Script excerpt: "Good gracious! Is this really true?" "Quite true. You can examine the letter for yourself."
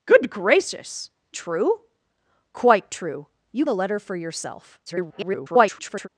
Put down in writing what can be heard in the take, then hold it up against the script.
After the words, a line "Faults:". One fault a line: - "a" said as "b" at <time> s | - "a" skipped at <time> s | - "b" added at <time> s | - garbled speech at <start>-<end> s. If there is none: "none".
"Good gracious! True?" "Quite true. You the letter for yourself." [garbled]
Faults:
- "Is this really" skipped at 1.1 s
- "can examine" skipped at 3.6 s
- garbled speech at 4.9-6.1 s